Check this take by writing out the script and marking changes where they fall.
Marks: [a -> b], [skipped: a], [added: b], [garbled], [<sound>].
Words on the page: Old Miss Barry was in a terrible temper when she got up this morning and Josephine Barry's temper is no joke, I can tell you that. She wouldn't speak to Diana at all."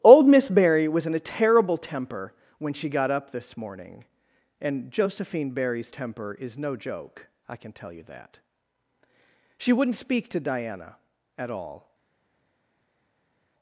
Old Miss Barry was in a terrible temper when she got up this morning and Josephine Barry's temper is no joke, I can tell you that. She wouldn't speak to Diana at all."